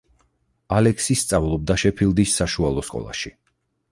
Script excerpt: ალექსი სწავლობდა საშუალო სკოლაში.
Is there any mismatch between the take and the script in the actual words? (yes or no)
yes